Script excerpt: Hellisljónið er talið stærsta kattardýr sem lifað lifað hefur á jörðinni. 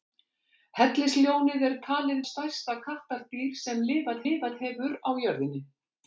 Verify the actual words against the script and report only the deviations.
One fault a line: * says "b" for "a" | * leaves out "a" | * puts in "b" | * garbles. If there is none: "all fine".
all fine